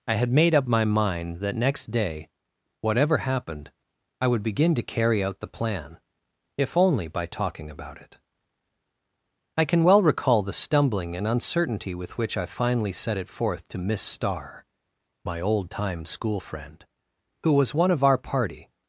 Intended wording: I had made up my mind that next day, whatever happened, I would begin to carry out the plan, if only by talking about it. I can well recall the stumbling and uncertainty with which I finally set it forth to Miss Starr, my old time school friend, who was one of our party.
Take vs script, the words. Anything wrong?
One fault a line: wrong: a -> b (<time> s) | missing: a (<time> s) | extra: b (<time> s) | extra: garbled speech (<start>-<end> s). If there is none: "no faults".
no faults